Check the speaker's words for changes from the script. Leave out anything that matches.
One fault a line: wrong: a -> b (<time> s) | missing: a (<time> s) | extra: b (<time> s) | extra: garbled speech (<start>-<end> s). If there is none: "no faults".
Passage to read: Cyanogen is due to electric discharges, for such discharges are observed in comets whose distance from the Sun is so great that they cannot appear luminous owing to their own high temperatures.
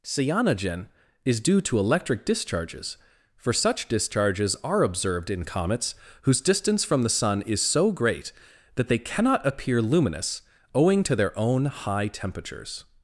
no faults